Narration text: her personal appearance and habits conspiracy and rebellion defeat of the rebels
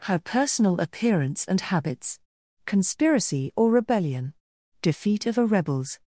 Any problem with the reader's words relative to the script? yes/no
yes